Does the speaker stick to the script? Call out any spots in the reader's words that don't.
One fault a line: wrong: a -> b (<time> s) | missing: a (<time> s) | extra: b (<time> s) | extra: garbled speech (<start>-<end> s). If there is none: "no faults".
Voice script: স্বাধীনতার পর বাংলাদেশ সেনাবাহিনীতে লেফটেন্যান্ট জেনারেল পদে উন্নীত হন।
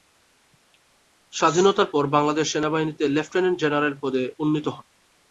no faults